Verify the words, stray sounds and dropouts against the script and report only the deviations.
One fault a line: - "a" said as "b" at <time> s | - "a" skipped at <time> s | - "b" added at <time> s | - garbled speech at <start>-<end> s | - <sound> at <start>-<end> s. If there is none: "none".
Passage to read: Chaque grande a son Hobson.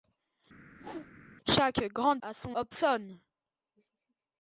- whoosh at 0.7-1.1 s